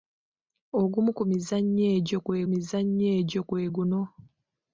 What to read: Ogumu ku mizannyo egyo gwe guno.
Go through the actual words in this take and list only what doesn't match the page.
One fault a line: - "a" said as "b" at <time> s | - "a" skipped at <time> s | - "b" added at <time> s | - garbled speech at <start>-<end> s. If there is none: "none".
- "mizannyo egyo gwe" added at 2.5 s